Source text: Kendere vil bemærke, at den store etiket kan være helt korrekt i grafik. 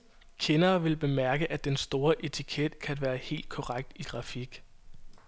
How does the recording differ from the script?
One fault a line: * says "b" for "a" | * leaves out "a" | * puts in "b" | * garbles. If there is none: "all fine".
all fine